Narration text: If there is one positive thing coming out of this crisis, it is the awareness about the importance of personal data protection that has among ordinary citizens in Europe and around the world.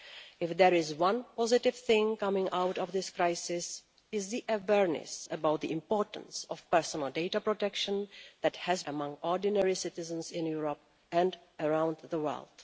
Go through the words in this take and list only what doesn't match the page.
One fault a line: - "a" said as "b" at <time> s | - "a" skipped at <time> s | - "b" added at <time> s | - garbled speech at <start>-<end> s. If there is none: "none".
none